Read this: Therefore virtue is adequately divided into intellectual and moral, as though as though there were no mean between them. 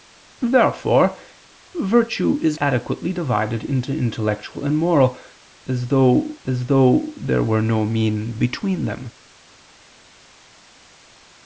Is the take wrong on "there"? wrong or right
right